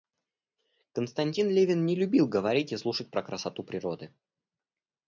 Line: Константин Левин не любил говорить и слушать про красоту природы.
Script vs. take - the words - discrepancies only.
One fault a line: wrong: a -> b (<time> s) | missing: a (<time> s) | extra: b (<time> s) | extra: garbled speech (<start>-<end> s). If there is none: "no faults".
no faults